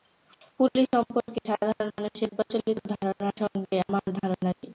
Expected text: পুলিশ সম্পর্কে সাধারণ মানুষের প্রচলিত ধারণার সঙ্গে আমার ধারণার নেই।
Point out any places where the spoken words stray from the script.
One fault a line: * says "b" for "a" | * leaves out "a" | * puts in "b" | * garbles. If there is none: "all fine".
all fine